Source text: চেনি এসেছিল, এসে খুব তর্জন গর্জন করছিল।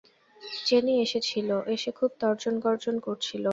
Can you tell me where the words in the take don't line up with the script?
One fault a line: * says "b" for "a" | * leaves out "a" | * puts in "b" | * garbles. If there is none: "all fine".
all fine